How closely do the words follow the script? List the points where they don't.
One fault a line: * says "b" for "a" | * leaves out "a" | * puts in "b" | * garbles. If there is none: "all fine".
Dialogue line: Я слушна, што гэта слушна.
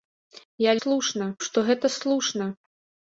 all fine